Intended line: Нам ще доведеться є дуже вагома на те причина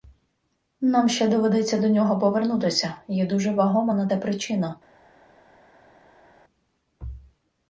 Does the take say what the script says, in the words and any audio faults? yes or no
no